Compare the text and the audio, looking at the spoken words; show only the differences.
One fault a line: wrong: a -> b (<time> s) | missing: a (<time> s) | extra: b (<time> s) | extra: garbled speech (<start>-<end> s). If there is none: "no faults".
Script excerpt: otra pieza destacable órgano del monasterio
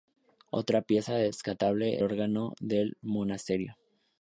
no faults